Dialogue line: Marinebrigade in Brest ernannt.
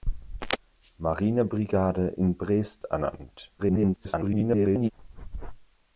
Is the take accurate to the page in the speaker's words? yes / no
no